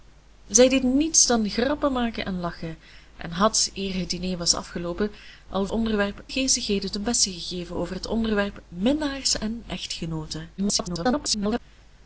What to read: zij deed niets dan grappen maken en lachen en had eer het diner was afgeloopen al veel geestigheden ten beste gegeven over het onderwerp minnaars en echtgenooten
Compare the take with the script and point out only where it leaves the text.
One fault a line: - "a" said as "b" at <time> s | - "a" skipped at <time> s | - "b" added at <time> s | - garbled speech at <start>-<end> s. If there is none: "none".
- "veel" said as "onderwerp" at 5.7 s
- garbled speech at 10.6-11.6 s